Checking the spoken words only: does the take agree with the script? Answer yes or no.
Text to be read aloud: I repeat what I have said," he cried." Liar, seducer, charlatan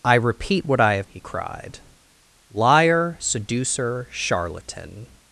no